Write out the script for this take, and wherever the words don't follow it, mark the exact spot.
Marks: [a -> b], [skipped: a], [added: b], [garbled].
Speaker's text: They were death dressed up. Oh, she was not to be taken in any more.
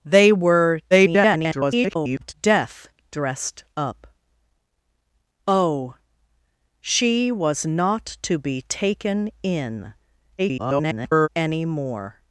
They were [garbled] death dressed up. Oh, she was not to be taken in [garbled] any more.